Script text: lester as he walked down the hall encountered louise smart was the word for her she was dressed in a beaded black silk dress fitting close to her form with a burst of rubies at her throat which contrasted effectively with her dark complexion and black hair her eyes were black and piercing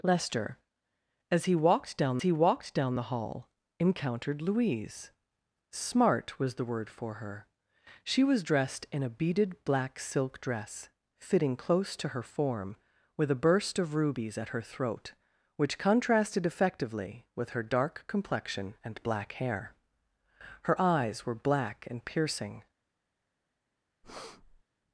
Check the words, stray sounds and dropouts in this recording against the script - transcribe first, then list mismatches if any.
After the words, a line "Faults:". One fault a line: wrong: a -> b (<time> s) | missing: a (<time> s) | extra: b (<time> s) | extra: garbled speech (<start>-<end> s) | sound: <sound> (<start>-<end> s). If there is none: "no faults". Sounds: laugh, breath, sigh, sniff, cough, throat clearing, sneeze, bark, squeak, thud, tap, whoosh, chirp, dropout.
lester as he walked down he walked down the hall encountered louise smart was the word for her she was dressed in a beaded black silk dress fitting close to her form with a burst of rubies at her throat which contrasted effectively with her dark complexion and black hair her eyes were black and piercing
Faults:
extra: he walked down (2.2 s)
sound: breath (24.0-24.6 s)